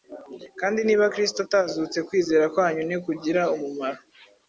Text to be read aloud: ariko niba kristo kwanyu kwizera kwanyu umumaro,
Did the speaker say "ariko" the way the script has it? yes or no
no